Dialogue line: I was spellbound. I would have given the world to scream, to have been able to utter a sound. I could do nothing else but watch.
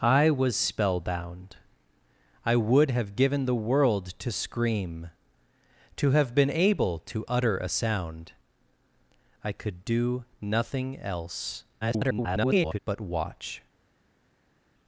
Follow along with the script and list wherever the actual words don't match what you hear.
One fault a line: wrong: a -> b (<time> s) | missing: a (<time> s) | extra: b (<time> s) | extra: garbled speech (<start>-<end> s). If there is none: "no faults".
extra: garbled speech (11.8-12.8 s)